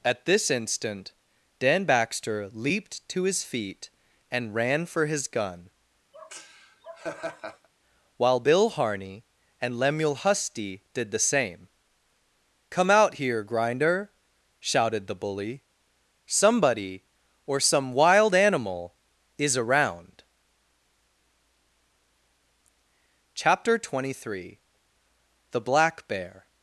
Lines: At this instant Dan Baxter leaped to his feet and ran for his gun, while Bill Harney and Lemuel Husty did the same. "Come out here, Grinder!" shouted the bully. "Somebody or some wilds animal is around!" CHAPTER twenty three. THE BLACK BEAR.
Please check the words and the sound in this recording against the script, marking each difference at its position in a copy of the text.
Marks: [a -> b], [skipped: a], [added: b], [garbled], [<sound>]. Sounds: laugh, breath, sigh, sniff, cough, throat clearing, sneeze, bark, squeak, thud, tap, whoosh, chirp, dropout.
At this instant Dan Baxter leaped to his feet and ran for his gun, [laugh] while Bill Harney and Lemuel Husty did the same. "Come out here, Grinder!" shouted the bully. "Somebody or some [wilds -> wild] animal is around!" CHAPTER twenty three. THE BLACK BEAR.